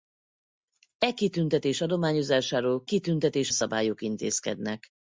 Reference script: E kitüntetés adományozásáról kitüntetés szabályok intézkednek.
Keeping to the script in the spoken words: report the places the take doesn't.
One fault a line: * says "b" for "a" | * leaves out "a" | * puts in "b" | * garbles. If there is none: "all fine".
all fine